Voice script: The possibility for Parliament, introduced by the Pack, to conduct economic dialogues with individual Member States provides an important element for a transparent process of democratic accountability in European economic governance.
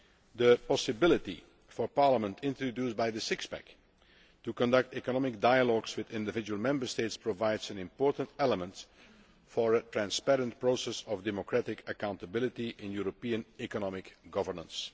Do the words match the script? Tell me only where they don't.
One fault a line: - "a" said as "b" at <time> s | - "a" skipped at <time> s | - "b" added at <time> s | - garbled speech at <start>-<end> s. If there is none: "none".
- "Six" added at 3.2 s